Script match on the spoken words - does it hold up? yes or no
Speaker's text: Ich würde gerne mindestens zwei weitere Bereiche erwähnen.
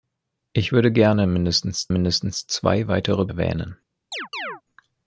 no